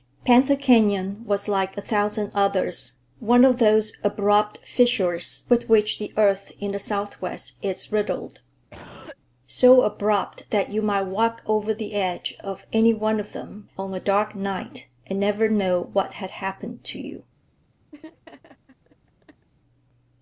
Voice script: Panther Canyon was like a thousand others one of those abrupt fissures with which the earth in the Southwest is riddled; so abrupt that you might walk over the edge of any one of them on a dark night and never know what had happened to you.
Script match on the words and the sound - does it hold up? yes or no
no